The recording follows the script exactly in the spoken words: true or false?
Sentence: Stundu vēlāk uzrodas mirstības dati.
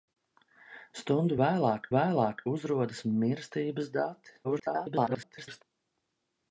false